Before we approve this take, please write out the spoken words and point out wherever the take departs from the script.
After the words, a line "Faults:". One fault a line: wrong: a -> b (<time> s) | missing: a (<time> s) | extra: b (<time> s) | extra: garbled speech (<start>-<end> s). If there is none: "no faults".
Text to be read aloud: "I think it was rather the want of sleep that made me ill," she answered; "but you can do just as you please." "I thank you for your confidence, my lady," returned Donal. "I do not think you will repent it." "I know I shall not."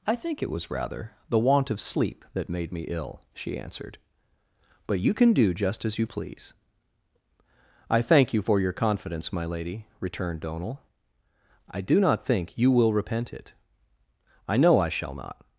"I think it was rather the want of sleep that made me ill," she answered; "but you can do just as you please." "I thank you for your confidence, my lady," returned Donal. "I do not think you will repent it." "I know I shall not."
Faults:
no faults